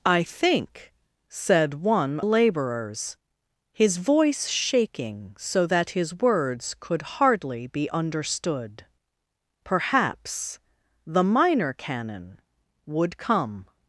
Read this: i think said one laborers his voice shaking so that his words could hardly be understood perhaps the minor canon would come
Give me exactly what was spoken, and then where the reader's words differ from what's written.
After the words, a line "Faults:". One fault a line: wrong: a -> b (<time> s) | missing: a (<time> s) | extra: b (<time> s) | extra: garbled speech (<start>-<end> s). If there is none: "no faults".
i think said one laborers his voice shaking so that his words could hardly be understood perhaps the minor canon would come
Faults:
no faults